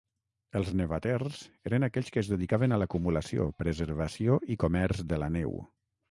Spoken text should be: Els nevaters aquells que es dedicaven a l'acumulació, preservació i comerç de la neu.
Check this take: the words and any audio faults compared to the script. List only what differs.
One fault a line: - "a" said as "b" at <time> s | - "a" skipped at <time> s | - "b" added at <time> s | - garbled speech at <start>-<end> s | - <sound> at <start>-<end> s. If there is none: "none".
- "eren" added at 1.7 s